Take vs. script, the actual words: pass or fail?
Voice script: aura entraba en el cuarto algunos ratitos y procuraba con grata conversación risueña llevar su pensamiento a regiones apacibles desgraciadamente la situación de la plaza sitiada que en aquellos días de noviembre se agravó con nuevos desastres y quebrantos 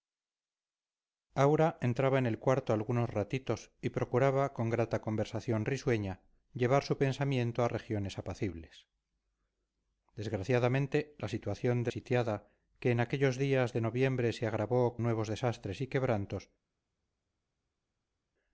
fail